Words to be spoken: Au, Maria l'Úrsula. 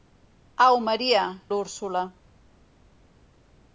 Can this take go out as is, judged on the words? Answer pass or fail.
pass